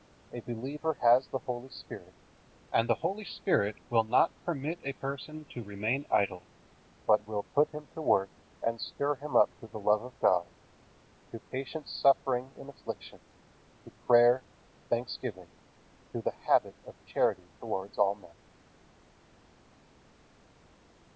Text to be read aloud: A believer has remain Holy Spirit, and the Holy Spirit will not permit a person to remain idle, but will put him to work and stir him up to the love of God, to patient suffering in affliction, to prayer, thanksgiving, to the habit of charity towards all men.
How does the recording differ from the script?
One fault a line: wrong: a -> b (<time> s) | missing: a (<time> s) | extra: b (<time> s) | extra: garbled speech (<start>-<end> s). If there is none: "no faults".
wrong: remain -> the (1.3 s)